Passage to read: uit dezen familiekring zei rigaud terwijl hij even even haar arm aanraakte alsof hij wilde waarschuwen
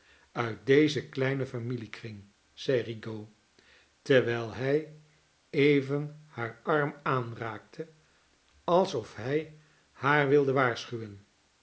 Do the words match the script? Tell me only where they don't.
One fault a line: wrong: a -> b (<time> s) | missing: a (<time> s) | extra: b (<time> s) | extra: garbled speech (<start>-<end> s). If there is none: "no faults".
extra: kleinen (1.1 s)
missing: even (6.2 s)
extra: haar (9.9 s)